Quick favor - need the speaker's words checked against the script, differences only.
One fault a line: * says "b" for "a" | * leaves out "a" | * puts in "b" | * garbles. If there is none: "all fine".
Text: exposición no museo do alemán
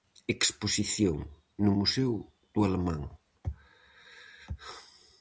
all fine